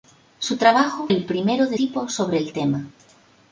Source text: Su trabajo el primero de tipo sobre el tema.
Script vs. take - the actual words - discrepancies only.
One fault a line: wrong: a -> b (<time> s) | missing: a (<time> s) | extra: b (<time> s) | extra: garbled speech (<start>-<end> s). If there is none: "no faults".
no faults